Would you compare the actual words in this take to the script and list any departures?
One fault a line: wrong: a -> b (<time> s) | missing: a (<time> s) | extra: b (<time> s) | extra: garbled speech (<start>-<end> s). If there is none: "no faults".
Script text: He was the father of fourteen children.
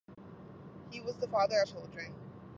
missing: of fourteen (1.6 s)